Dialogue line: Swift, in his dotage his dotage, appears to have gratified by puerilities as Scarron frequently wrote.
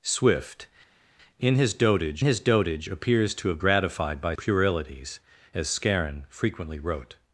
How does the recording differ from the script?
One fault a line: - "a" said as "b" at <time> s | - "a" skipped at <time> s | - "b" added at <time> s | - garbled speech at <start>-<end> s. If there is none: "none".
none